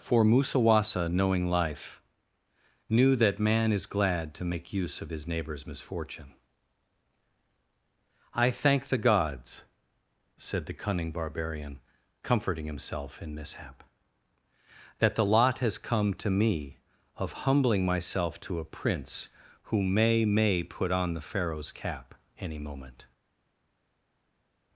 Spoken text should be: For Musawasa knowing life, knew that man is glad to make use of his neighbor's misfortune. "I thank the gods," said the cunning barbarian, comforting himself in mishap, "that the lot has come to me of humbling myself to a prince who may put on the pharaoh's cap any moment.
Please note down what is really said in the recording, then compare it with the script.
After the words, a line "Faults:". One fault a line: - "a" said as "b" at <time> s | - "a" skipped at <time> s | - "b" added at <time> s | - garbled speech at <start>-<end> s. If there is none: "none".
For Musawasa knowing life, knew that man is glad to make use of his neighbor's misfortune. "I thank the gods," said the cunning barbarian, comforting himself in mishap, "that the lot has come to me of humbling myself to a prince who may may put on the pharaoh's cap any moment.
Faults:
- "may" added at 20.3 s